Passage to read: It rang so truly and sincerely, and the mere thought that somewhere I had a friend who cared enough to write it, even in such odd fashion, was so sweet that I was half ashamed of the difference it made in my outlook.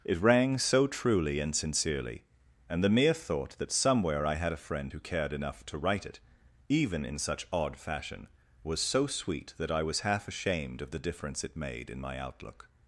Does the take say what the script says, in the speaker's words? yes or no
yes